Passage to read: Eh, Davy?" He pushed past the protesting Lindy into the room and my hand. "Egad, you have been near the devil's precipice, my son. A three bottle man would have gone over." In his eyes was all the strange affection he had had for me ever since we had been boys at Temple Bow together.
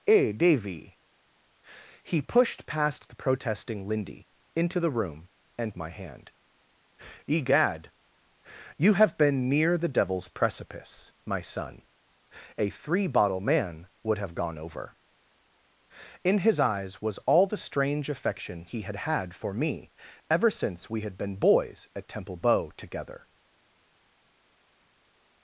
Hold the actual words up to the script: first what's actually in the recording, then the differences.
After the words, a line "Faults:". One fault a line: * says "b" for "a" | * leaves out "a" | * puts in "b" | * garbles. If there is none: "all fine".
Eh, Davy?" He pushed past the protesting Lindy into the room and my hand. "Egad, you have been near the devil's precipice, my son. A three bottle man would have gone over." In his eyes was all the strange affection he had had for me ever since we had been boys at Temple Bow together.
Faults:
all fine